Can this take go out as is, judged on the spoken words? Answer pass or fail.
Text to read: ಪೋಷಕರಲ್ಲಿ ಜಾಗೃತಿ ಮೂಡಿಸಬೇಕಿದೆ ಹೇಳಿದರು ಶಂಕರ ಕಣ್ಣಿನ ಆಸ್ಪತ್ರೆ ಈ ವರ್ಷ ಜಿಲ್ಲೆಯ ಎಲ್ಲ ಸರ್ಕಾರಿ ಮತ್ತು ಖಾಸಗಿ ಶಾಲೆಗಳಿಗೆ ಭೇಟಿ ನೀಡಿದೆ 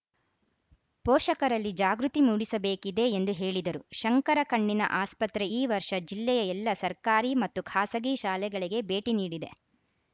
fail